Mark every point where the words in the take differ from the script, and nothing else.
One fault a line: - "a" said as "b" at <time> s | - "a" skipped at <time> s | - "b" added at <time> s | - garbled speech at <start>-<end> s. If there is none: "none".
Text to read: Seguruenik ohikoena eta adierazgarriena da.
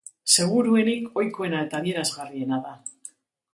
none